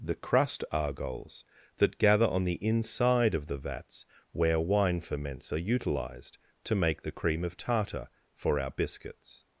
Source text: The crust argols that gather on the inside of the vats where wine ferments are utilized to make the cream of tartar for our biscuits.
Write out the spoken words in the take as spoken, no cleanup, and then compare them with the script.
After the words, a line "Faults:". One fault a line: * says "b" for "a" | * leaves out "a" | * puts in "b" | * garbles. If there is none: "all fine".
The crust argols that gather on the inside of the vats where wine ferments are utilized to make the cream of tartar for our biscuits.
Faults:
all fine